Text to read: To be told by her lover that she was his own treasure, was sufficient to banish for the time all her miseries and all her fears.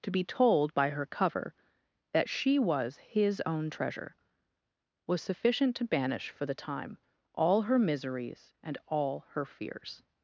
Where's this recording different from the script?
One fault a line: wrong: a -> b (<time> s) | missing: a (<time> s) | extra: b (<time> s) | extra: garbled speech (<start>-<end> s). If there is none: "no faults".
wrong: lover -> cover (1.1 s)